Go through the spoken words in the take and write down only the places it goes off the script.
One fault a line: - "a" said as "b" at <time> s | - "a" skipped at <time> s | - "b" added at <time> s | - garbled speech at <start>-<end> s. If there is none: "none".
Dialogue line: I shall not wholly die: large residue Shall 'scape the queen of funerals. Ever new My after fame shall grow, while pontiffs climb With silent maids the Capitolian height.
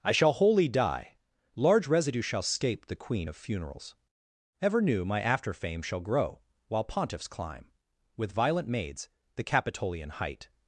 - "not" skipped at 0.3 s
- "silent" said as "violent" at 8.3 s